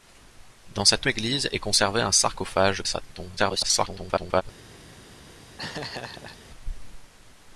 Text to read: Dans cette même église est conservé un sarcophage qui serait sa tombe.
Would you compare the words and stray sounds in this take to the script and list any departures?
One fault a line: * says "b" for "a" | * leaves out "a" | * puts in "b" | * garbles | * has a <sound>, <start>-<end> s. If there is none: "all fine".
* leaves out "même"
* leaves out "qui serait"
* garbles
* has a laugh, 5.6-6.4 s